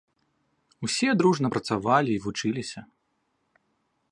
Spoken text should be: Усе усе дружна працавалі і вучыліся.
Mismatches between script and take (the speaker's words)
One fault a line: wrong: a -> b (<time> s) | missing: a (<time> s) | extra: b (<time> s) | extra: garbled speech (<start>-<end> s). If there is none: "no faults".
missing: усе (1.1 s)